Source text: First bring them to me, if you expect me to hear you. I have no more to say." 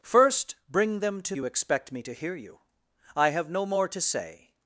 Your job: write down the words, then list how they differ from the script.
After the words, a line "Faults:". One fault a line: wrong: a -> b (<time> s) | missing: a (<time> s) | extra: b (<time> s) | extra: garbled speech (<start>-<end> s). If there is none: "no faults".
First bring them to you expect me to hear you. I have no more to say."
Faults:
missing: me if (1.4 s)